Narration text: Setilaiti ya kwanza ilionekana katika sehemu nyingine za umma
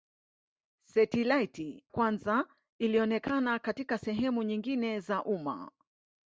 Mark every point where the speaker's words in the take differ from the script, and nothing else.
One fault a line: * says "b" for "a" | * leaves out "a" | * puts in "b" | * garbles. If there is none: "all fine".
* leaves out "ya"